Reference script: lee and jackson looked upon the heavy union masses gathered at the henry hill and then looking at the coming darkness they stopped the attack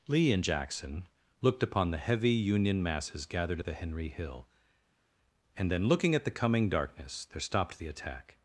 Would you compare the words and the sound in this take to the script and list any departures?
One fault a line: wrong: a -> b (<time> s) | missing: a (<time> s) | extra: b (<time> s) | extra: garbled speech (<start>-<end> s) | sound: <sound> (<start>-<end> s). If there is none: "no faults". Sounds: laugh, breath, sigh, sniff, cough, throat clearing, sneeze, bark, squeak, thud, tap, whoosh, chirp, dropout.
wrong: they -> there (7.3 s)